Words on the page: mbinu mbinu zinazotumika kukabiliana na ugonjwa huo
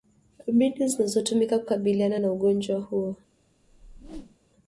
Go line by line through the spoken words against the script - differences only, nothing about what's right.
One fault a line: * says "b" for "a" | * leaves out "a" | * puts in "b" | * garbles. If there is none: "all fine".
* leaves out "mbinu"